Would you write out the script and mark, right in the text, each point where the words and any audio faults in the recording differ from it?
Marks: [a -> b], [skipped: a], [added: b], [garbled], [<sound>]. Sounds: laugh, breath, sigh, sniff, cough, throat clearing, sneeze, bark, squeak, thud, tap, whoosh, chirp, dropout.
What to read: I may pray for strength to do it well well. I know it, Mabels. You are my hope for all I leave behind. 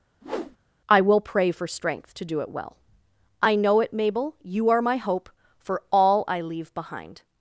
[whoosh] I [may -> will] pray for strength to do it well [skipped: well.] I know it, [Mabels. -> Mabel] You are my hope for all I leave behind.